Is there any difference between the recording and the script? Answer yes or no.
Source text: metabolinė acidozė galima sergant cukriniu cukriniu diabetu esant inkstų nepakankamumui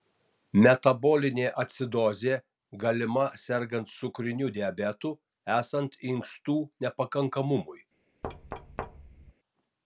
yes